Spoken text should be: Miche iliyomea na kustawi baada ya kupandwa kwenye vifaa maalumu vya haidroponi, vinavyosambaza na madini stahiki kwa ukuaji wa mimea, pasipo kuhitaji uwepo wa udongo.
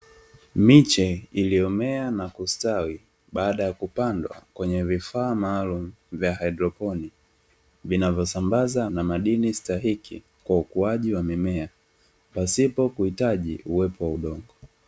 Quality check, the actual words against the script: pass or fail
pass